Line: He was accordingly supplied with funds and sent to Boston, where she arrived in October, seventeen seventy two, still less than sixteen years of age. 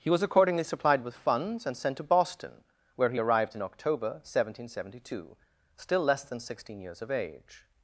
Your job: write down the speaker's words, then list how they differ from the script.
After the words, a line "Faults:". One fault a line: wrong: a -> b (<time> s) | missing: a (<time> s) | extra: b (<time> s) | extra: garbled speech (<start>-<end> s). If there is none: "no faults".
He was accordingly supplied with funds and sent to Boston, where he arrived in October, seventeen seventy two, still less than sixteen years of age.
Faults:
wrong: she -> he (3.1 s)